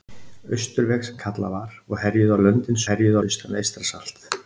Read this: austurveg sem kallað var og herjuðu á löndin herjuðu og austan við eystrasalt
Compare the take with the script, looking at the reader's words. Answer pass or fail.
pass